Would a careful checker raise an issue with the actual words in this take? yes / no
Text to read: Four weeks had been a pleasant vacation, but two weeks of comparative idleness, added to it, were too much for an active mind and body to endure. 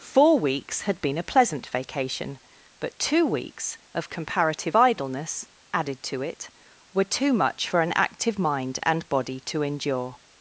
no